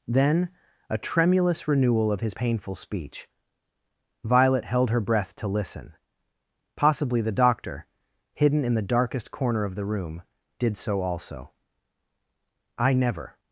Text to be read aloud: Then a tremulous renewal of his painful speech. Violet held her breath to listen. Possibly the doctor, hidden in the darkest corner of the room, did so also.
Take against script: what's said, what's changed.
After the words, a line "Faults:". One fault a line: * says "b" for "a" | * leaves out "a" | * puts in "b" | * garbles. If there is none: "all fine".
Then a tremulous renewal of his painful speech. Violet held her breath to listen. Possibly the doctor, hidden in the darkest corner of the room, did so also. "I never
Faults:
* puts in "I never"